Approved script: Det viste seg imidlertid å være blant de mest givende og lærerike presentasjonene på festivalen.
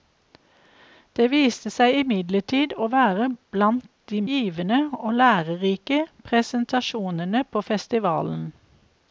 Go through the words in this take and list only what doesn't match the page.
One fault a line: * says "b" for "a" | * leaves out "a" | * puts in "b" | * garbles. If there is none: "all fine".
* leaves out "mest"